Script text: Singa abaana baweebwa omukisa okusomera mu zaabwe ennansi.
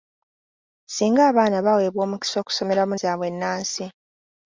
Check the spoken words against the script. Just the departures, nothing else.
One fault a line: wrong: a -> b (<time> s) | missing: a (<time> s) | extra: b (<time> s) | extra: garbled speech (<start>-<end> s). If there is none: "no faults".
no faults